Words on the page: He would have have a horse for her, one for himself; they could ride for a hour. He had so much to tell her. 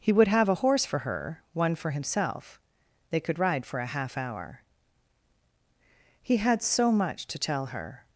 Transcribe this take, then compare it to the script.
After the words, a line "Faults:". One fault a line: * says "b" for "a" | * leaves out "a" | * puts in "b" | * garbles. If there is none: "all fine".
He would have a horse for her, one for himself; they could ride for a half hour. He had so much to tell her.
Faults:
* leaves out "have"
* puts in "half"